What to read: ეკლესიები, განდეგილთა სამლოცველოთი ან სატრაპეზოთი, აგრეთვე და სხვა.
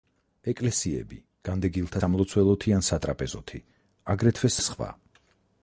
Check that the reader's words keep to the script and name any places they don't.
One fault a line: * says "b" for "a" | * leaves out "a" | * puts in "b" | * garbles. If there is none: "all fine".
all fine